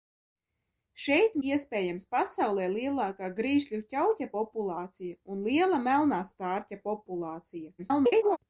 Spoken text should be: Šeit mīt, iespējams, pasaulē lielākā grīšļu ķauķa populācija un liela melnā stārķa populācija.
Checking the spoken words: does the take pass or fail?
fail